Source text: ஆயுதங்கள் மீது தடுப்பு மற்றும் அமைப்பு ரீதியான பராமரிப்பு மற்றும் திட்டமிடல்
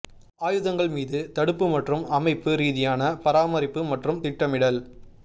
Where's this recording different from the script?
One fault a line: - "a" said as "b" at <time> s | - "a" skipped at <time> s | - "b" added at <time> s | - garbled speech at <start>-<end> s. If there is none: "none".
none